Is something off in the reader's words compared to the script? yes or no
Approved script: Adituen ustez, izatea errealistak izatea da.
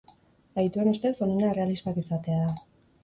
yes